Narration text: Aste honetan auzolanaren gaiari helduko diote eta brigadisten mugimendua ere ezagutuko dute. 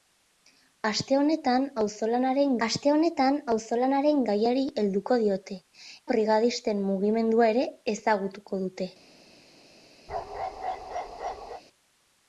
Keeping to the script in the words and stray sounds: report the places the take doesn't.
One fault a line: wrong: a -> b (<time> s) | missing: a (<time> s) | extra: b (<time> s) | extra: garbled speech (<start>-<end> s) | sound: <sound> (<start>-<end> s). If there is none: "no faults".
extra: aste honetan auzolanaren (2.6 s)
missing: eta (5.6 s)
sound: bark (10.1-11.6 s)